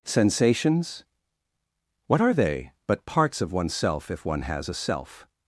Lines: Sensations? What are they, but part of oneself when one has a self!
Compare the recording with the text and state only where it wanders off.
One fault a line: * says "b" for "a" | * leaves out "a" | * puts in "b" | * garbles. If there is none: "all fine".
* says "parts" for "part"
* says "if" for "when"